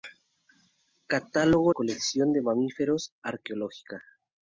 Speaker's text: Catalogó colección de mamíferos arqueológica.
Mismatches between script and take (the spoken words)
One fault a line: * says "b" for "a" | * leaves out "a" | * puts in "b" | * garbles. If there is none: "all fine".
all fine